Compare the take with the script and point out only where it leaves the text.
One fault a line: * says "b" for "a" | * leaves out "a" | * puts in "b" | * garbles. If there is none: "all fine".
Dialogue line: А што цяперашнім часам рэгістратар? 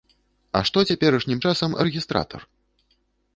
all fine